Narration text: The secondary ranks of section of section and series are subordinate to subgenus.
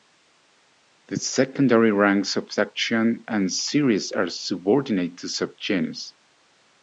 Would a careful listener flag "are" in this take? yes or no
no